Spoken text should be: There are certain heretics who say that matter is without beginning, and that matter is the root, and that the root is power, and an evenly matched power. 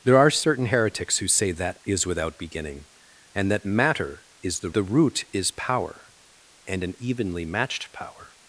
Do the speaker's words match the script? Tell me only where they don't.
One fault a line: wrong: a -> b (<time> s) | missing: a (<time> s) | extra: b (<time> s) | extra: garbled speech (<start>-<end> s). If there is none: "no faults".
missing: matter (1.8 s)
missing: root and that (4.7 s)